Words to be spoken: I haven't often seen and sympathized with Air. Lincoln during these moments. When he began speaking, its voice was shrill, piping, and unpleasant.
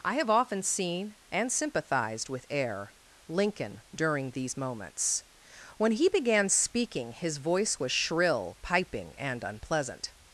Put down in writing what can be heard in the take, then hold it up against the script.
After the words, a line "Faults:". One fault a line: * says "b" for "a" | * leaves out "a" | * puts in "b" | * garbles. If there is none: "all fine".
I have often seen and sympathized with Air. Lincoln during these moments. When he began speaking, his voice was shrill, piping, and unpleasant.
Faults:
* says "have" for "haven't"
* says "his" for "its"